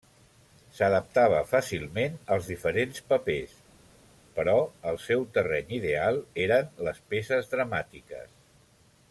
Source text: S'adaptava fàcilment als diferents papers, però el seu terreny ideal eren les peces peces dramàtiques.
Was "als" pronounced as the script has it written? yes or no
yes